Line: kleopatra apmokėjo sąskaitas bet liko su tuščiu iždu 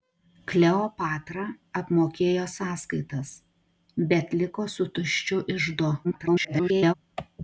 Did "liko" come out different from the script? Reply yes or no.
no